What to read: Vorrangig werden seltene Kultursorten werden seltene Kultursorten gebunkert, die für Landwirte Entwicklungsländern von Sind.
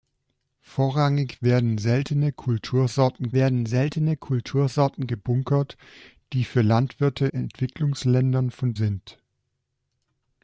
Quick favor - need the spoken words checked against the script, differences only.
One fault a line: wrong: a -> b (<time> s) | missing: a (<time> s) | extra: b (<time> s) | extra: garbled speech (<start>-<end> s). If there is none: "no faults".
no faults